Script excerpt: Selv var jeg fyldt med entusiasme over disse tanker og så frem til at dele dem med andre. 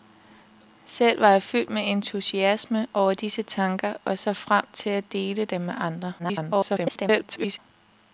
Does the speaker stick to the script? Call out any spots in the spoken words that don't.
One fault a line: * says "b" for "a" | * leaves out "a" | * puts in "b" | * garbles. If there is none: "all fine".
* garbles